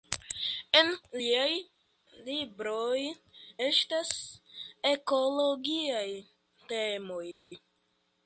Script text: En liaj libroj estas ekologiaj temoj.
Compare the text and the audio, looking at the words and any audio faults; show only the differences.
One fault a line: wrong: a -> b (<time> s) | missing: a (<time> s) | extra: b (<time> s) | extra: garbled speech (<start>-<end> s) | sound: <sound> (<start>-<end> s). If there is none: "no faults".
no faults